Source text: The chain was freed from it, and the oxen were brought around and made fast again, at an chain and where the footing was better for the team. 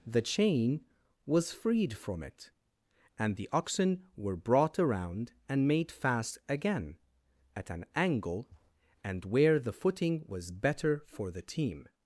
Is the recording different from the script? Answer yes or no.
yes